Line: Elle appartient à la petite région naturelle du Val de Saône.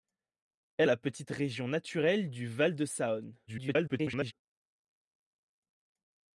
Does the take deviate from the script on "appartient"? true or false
true